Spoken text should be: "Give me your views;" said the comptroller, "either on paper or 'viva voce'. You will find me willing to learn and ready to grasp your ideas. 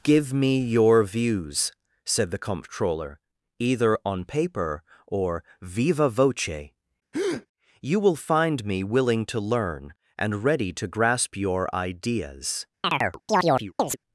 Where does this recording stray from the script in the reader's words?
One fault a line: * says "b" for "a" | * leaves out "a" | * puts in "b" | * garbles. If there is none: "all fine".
all fine